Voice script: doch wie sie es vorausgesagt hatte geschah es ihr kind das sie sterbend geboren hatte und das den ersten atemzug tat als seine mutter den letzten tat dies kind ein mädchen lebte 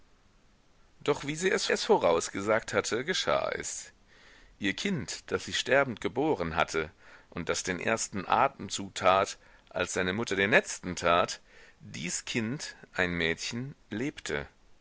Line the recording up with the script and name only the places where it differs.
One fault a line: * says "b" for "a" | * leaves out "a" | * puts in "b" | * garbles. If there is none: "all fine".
* puts in "es"